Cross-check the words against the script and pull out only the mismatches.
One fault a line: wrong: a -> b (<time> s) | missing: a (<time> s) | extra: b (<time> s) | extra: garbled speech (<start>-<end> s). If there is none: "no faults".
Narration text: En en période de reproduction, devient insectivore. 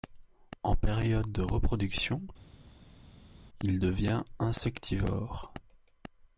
missing: en (0.8 s)
extra: il (3.6 s)